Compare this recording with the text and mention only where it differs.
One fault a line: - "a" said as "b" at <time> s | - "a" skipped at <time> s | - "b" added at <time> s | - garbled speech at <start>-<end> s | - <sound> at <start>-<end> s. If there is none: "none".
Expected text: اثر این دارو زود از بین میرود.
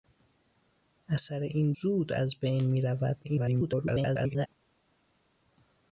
- "دارو" skipped at 1.7 s
- garbled speech at 3.2-4.5 s